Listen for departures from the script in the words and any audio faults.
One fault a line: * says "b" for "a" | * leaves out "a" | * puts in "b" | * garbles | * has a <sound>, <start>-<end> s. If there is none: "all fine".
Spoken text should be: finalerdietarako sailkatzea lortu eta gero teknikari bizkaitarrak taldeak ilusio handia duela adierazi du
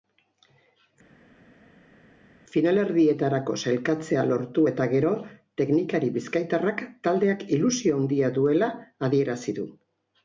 all fine